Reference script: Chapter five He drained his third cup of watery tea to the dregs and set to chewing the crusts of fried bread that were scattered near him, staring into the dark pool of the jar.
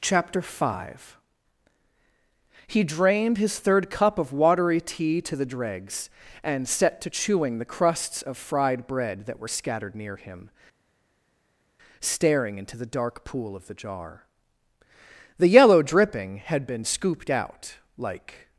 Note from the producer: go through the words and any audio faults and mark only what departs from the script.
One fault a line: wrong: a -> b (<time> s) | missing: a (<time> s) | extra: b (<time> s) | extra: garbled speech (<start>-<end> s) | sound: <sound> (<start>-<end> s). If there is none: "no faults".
extra: The yellow dripping had been scooped out like (15.4 s)